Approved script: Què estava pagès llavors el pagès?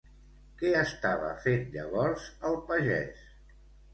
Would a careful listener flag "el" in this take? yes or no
no